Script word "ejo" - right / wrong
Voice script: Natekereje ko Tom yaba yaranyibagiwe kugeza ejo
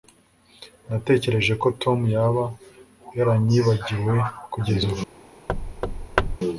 wrong